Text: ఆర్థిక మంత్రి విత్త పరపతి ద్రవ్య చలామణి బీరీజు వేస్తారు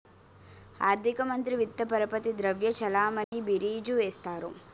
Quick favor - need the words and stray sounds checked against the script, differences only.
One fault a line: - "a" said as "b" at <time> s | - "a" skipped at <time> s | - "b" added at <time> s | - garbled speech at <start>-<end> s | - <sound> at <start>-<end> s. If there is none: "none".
- dropout at 3.2-3.3 s